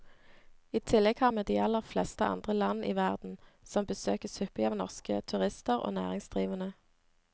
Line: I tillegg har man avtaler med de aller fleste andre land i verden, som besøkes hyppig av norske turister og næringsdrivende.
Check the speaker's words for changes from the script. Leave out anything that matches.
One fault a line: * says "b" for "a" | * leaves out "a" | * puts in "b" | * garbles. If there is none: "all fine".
* leaves out "man avtaler"